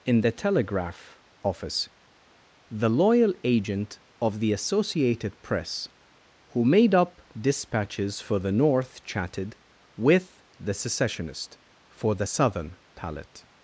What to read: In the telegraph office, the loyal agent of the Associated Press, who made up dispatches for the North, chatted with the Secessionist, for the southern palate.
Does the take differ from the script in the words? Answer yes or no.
no